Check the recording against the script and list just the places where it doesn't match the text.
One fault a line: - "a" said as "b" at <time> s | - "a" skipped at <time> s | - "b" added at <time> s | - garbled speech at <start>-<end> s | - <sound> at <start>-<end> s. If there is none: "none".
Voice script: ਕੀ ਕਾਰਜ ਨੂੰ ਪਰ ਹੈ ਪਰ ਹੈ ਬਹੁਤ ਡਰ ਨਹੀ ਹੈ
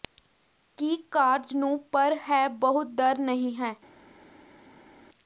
- "ਪਰ ਹੈ" skipped at 2.5 s